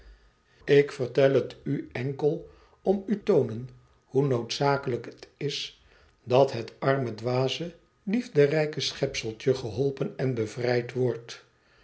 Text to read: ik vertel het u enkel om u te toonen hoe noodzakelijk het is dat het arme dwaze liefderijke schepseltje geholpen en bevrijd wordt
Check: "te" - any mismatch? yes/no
yes